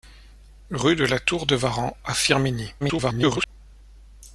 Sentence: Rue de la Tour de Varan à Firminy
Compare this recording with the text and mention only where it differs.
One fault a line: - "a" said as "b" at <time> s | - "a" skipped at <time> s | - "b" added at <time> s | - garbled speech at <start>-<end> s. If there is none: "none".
- garbled speech at 2.8-3.5 s